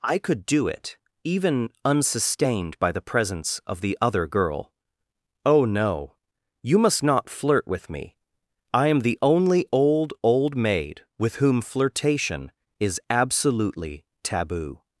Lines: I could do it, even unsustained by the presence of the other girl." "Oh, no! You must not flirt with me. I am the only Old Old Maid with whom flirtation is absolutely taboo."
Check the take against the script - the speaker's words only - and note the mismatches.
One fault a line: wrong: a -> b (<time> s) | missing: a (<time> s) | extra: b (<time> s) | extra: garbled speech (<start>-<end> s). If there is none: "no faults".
no faults